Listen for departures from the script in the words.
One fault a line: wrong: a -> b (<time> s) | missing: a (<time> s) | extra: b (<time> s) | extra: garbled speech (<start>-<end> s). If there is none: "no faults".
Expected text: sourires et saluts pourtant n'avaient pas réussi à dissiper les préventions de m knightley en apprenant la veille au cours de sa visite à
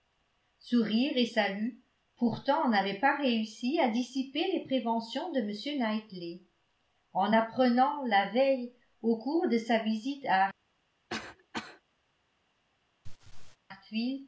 no faults